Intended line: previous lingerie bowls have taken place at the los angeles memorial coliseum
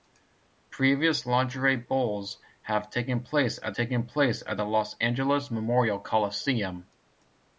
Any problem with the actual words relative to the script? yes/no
yes